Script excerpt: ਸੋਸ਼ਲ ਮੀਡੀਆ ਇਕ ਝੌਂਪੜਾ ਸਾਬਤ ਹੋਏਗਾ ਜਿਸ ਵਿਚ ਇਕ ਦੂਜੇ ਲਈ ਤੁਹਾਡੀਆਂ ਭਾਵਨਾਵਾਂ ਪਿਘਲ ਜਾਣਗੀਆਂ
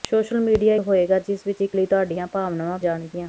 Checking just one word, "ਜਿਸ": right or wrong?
right